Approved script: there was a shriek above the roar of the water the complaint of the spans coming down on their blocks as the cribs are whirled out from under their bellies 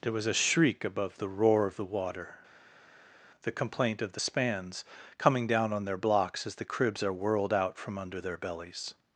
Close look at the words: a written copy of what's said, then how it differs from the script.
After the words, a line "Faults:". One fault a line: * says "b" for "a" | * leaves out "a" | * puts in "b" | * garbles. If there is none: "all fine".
there was a shriek above the roar of the water the complaint of the spans coming down on their blocks as the cribs are whirled out from under their bellies
Faults:
all fine